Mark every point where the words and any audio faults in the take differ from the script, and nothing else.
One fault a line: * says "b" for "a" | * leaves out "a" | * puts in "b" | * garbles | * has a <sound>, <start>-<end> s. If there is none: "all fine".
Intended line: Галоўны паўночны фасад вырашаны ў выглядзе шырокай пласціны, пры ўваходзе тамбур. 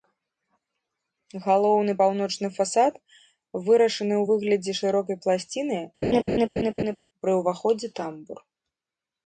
* has a laugh, 6.0-7.0 s